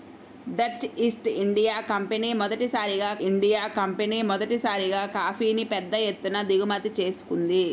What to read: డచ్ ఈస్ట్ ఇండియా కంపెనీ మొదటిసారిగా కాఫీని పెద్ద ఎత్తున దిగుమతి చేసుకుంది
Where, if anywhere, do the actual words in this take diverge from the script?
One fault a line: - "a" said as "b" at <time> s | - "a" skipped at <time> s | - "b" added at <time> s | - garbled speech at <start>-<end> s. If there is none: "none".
- "ఇండియా కంపెనీ మొదటిసారిగా" added at 3.2 s